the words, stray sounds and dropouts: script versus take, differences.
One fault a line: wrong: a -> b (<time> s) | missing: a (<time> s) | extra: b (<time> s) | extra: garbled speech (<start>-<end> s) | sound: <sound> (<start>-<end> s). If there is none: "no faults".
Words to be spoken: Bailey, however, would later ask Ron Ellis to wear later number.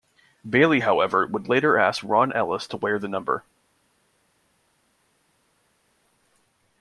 wrong: later -> the (3.0 s)